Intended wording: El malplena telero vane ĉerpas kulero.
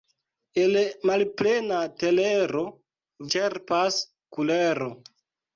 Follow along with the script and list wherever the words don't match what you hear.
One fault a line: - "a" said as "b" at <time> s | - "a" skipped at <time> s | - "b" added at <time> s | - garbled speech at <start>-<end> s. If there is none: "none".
- "vane" skipped at 2.6 s